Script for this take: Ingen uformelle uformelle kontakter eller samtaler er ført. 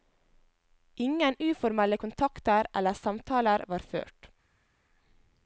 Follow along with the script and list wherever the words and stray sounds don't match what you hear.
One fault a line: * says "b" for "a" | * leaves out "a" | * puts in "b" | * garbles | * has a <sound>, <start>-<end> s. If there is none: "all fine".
* leaves out "uformelle"
* says "var" for "er"